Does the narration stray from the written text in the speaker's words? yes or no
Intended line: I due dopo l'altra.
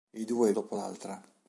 no